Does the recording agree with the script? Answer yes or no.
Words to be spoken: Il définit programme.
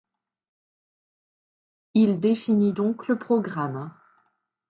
no